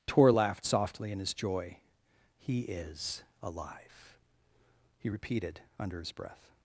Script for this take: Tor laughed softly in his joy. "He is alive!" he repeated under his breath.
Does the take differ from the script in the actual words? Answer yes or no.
no